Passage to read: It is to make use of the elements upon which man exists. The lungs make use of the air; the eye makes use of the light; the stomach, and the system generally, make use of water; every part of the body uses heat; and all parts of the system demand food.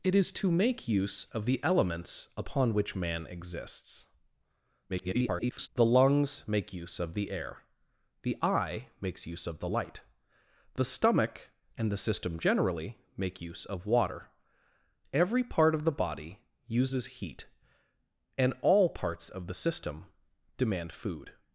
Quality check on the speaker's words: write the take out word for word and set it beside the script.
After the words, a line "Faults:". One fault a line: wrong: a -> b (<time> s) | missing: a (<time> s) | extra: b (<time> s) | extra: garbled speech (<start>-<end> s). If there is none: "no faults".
It is to make use of the elements upon which man exists. [garbled] The lungs make use of the air; the eye makes use of the light; the stomach, and the system generally, make use of water; every part of the body uses heat; and all parts of the system demand food.
Faults:
extra: garbled speech (4.9-5.7 s)